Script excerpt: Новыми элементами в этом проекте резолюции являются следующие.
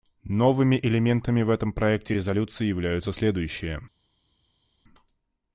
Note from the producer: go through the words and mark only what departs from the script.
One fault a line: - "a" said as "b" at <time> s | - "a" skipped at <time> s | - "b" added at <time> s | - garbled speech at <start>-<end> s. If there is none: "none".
none